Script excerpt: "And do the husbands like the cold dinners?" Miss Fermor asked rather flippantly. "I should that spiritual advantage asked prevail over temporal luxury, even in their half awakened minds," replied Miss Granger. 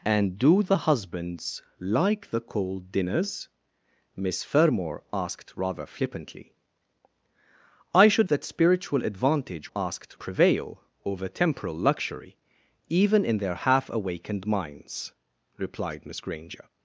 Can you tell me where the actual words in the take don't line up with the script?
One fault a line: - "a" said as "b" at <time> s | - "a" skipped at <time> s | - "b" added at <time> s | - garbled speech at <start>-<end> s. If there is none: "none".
none